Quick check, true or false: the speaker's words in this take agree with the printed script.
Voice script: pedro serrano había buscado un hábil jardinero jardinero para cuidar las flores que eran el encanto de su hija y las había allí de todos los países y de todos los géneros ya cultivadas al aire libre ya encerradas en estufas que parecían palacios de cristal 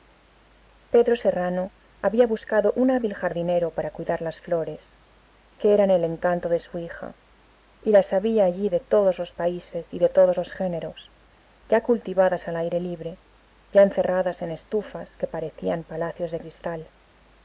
false